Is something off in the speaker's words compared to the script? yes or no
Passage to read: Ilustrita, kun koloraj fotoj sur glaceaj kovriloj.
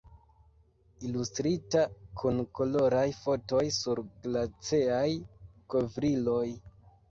no